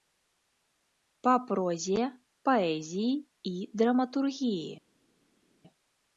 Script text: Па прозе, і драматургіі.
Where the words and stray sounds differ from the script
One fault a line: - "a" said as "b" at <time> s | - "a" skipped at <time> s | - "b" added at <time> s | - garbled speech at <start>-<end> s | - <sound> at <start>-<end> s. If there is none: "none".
- "паэзіі" added at 2.5 s